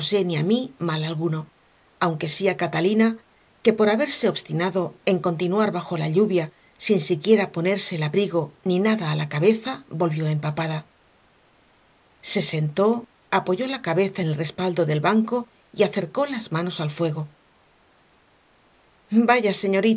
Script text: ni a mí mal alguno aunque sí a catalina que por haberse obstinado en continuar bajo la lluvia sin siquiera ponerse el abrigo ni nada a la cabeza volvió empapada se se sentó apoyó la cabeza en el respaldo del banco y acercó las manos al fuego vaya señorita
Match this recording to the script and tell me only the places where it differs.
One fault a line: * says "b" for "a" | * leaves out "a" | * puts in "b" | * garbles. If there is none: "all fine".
* leaves out "se"